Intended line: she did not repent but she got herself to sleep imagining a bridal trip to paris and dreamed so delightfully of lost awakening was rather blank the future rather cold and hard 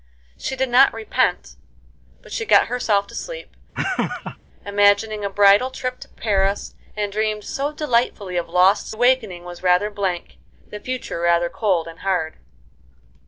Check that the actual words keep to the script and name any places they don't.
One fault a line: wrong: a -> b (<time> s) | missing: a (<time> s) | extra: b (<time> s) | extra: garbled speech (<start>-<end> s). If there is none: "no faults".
no faults